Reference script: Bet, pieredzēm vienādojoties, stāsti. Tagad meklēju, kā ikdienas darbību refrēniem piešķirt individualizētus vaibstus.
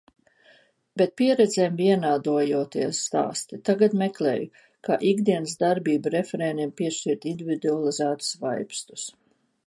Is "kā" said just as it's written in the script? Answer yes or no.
yes